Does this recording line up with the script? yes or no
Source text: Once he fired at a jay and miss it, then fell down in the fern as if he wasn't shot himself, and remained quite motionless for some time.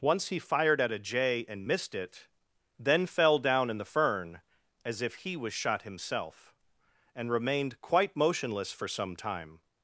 no